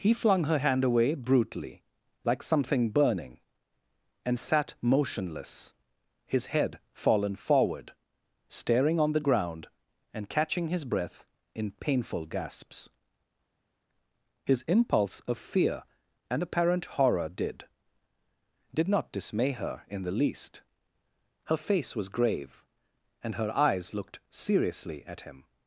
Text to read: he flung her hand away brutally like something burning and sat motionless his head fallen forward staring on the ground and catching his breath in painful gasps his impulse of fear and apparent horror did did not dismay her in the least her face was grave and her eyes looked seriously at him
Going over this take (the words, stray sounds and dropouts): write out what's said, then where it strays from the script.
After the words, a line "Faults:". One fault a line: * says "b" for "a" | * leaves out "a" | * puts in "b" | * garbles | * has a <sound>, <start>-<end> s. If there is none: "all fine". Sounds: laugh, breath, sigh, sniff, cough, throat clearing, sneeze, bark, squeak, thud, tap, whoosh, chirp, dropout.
he flung her hand away brutally like something burning and sat motionless his head fallen forward staring on the ground and catching his breath in painful gasps his impulse of fear and apparent horror did did not dismay her in the least her face was grave and her eyes looked seriously at him
Faults:
all fine